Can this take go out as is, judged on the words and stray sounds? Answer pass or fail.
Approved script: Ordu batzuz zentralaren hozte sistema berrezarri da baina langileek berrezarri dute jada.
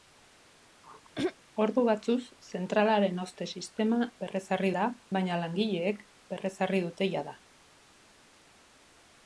fail